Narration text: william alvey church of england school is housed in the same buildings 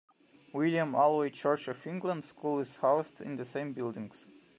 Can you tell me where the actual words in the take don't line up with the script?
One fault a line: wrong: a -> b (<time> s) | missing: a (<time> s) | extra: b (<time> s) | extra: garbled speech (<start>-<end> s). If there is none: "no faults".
no faults